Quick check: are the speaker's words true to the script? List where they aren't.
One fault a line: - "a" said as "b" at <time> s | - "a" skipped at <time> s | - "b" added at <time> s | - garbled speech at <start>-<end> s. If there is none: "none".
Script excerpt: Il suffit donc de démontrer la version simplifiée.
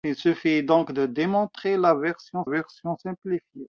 - "version" added at 2.4 s